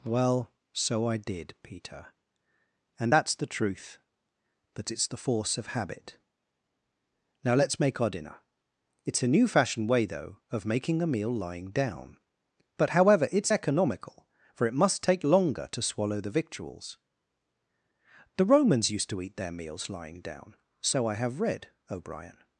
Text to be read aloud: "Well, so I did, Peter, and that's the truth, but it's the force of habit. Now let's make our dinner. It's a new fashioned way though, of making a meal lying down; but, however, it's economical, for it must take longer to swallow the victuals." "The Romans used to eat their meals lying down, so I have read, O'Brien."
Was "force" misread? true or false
false